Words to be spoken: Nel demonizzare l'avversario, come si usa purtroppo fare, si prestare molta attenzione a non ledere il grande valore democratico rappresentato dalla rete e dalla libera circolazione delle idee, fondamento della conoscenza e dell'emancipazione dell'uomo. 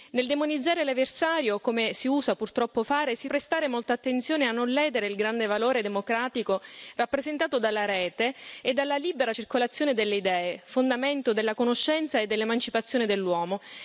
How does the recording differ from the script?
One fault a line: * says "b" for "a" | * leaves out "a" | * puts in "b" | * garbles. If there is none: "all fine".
all fine